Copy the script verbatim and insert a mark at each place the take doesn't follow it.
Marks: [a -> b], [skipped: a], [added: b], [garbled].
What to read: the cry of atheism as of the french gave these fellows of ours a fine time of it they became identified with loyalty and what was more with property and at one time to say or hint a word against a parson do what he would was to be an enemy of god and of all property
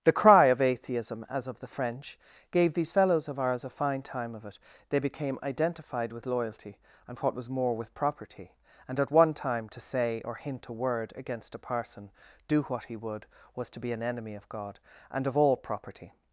the cry of atheism as of the french gave these fellows of ours a fine time of it they became identified with loyalty and what was more with property and at one time to say or hint a word against a parson do what he would was to be an enemy of god and of all property